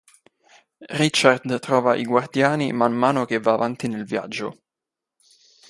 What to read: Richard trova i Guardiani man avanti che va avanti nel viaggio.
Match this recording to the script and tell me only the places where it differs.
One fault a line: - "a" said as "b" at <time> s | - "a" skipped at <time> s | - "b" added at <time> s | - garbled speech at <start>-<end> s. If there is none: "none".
- "avanti" said as "mano" at 2.9 s